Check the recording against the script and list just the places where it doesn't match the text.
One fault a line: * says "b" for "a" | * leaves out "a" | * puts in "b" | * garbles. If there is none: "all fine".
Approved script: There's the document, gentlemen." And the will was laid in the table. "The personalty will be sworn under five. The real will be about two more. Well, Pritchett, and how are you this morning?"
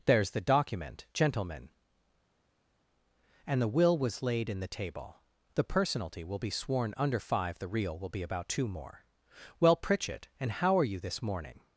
all fine